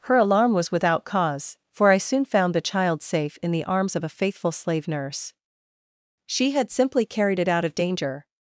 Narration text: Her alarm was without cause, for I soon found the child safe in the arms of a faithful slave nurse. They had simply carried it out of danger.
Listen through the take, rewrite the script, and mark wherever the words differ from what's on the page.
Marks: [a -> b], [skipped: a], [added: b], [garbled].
Her alarm was without cause, for I soon found the child safe in the arms of a faithful slave nurse. [They -> She] had simply carried it out of danger.